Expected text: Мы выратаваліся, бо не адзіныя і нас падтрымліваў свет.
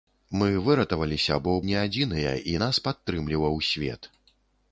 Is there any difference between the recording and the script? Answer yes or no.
no